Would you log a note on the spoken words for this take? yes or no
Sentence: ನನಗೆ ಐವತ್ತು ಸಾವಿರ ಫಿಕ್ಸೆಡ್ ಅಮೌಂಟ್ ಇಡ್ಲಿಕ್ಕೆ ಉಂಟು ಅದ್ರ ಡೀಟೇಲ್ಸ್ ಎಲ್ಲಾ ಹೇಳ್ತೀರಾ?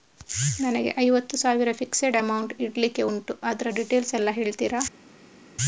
no